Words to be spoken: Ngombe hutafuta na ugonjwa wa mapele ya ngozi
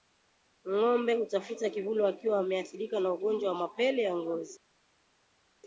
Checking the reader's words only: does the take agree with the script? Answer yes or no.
no